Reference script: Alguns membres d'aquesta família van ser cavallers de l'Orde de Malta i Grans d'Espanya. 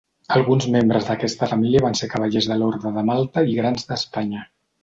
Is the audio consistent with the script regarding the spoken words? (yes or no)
yes